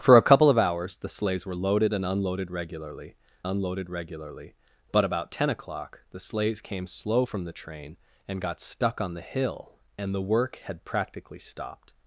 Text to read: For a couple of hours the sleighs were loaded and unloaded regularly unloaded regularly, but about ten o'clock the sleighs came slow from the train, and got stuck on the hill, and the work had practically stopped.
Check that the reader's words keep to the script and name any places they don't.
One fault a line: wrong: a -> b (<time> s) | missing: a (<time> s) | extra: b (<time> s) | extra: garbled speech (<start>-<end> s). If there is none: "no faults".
no faults